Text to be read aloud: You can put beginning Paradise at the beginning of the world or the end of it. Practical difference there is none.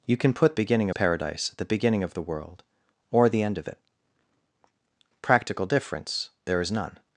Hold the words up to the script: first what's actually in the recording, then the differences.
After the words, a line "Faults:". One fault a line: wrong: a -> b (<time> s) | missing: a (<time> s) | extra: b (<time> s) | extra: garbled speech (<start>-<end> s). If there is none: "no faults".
You can put beginning Paradise at the beginning of the world or the end of it. Practical difference there is none.
Faults:
no faults